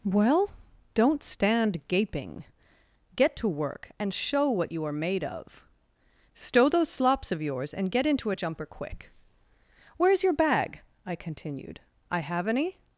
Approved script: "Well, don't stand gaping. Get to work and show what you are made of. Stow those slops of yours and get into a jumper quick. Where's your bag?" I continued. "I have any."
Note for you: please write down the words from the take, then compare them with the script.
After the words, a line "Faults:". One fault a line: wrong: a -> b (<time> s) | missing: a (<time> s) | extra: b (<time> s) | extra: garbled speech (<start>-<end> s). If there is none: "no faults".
"Well, don't stand gaping. Get to work and show what you are made of. Stow those slops of yours and get into a jumper quick. Where's your bag?" I continued. "I have any."
Faults:
no faults